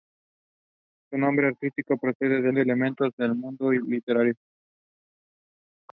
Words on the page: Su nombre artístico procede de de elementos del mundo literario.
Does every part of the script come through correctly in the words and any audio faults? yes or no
yes